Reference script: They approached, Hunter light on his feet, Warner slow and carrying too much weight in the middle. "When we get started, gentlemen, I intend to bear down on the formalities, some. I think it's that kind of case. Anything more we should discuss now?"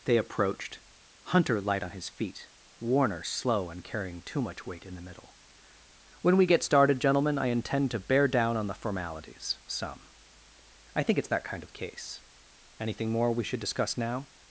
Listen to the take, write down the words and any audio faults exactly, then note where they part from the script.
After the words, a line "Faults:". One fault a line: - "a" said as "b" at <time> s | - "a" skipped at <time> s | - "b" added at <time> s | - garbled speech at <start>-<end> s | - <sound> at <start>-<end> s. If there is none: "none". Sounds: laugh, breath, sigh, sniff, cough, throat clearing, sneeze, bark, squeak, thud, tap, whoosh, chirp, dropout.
They approached, Hunter light on his feet, Warner slow and carrying too much weight in the middle. "When we get started, gentlemen, I intend to bear down on the formalities, some. I think it's that kind of case. Anything more we should discuss now?"
Faults:
none